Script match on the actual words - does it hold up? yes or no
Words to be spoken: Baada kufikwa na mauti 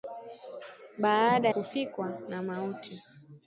yes